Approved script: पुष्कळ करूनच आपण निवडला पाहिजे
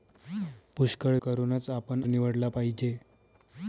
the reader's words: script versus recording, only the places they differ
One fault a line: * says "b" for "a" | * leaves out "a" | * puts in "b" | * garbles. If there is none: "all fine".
all fine